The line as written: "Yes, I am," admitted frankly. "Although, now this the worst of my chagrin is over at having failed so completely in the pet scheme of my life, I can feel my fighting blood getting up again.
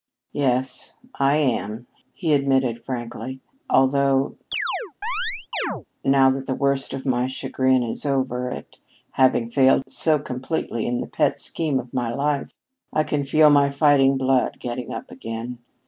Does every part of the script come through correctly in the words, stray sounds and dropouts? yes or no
no